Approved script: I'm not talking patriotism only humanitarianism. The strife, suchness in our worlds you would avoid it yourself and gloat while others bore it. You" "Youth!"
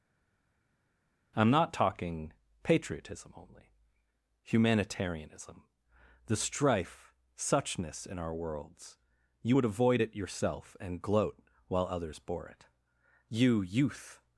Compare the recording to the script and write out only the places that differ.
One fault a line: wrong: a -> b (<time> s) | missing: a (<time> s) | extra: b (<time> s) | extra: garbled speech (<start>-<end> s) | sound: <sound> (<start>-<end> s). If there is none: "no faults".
no faults